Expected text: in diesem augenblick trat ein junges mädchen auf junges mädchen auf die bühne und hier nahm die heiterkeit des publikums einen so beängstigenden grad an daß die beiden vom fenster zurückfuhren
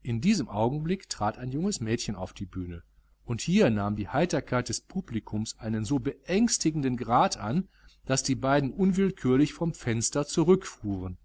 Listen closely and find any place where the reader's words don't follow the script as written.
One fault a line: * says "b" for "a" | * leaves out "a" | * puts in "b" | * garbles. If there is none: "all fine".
* leaves out "junges mädchen auf"
* puts in "unwillkürlich"